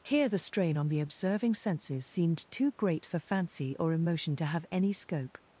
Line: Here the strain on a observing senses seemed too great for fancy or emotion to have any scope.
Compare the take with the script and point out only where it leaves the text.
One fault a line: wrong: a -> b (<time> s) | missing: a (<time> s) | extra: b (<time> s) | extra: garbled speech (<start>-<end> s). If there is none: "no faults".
wrong: a -> the (0.9 s)